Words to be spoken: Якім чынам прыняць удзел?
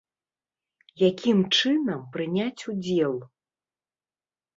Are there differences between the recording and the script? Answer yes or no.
no